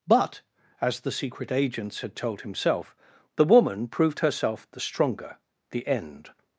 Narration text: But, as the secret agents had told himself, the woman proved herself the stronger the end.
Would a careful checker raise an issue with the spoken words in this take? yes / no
no